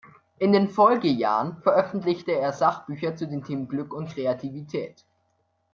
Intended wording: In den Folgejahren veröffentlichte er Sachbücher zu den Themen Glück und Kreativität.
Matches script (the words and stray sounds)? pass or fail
pass